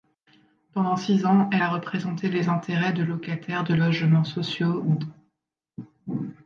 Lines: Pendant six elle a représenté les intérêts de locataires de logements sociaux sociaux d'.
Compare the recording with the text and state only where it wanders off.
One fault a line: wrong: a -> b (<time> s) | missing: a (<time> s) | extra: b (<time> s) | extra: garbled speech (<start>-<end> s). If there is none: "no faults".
extra: ans (1.3 s)
missing: sociaux (4.8 s)